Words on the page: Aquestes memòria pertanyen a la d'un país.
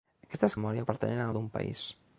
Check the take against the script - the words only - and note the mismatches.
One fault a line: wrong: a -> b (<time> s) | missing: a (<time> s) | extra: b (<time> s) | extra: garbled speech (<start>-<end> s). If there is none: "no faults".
no faults